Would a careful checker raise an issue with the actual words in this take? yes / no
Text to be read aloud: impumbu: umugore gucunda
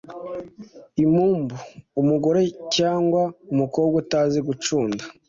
yes